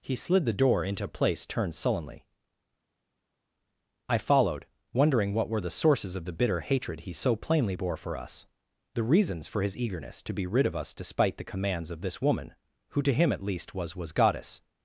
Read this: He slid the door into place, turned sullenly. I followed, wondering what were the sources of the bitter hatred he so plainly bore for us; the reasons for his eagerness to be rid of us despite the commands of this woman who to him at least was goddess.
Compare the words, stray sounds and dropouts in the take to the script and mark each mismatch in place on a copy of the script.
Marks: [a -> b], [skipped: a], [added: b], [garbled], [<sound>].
He slid the door into place, turned sullenly. I followed, wondering what were the sources of the bitter hatred he so plainly bore for us; the reasons for his eagerness to be rid of us despite the commands of this woman who to him at least was [added: was] goddess.